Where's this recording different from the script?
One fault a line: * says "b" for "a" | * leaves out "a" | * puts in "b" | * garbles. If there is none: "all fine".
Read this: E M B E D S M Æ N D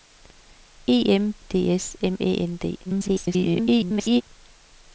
* leaves out "B"
* garbles